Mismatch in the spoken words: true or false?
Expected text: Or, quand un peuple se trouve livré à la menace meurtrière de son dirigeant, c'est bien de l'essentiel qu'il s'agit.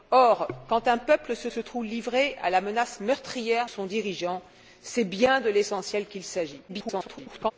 true